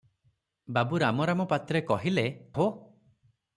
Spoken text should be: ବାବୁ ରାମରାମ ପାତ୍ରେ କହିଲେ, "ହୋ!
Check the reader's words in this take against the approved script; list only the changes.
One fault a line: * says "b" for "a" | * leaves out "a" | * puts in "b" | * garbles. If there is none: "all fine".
all fine